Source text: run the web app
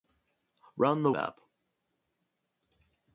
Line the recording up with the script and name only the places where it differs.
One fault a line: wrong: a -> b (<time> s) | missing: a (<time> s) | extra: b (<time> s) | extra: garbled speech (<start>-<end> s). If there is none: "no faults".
missing: web (1.1 s)